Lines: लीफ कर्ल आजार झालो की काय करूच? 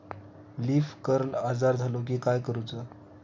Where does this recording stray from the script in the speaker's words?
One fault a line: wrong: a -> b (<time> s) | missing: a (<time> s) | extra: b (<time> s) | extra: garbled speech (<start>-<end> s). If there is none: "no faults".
no faults